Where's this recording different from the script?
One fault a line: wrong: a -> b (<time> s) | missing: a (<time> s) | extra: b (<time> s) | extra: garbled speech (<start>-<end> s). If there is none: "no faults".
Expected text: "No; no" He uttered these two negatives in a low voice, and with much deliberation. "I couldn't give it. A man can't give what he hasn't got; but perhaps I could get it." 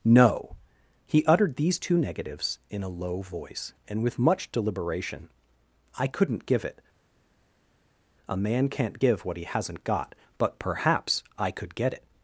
missing: no (0.6 s)